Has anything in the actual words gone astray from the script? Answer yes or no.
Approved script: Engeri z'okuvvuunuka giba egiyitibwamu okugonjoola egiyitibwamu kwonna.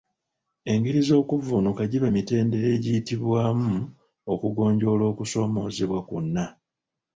yes